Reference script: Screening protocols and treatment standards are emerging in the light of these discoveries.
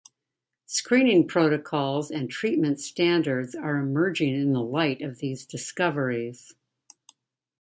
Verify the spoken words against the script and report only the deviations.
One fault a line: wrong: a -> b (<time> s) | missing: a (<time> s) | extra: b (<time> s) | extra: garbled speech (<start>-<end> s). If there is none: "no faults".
no faults